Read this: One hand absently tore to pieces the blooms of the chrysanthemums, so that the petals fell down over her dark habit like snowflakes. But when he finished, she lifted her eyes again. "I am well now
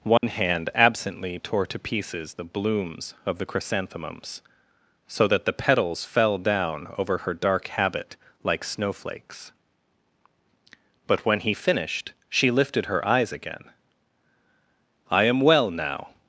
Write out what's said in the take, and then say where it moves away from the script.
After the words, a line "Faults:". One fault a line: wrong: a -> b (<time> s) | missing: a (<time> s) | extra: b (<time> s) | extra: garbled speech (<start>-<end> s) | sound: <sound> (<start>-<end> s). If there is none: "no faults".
One hand absently tore to pieces the blooms of the chrysanthemums, so that the petals fell down over her dark habit like snowflakes. But when he finished, she lifted her eyes again. "I am well now
Faults:
sound: dropout (0.2-0.2 s)